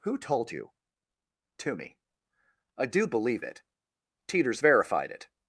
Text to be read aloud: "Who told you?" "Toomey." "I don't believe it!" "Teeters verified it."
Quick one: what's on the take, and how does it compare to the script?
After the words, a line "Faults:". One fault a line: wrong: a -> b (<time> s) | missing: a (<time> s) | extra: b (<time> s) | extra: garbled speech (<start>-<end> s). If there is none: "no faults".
"Who told you?" "Toomey." "I do believe it!" "Teeters verified it."
Faults:
wrong: don't -> do (2.9 s)